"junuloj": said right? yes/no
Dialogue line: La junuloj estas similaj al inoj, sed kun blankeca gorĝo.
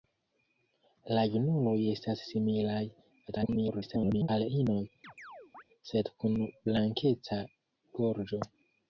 yes